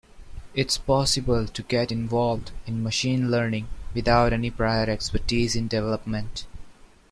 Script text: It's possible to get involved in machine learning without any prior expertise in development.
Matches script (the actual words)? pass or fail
pass